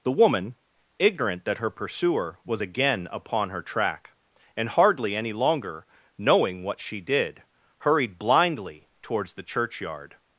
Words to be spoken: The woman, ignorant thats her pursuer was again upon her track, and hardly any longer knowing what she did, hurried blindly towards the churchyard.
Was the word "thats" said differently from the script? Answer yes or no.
yes